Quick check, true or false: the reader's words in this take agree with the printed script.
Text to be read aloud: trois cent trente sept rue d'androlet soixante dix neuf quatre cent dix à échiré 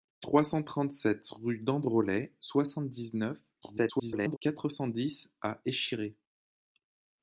false